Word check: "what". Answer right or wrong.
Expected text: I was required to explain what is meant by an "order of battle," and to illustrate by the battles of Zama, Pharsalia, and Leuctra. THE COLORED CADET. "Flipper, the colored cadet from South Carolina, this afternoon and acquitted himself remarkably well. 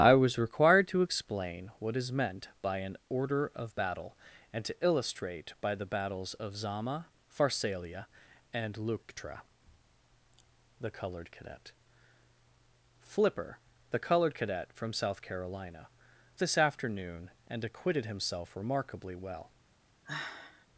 right